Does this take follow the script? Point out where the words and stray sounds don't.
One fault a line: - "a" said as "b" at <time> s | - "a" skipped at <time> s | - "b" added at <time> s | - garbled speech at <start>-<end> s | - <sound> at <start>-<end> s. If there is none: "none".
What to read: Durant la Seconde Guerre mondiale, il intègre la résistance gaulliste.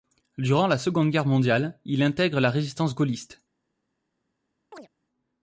- chirp at 4.7-4.9 s